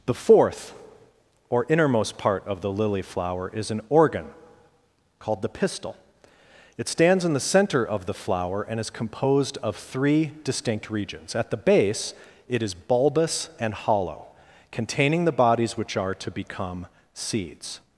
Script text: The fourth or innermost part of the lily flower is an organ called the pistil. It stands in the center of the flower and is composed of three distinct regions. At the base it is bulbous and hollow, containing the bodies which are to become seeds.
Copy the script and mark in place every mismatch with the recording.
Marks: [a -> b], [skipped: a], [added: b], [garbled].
The fourth or innermost part of the lily flower is an organ called the pistil. It stands in the center of the flower and is composed of three distinct regions. At the base it is bulbous and hollow, containing the bodies which are to become seeds.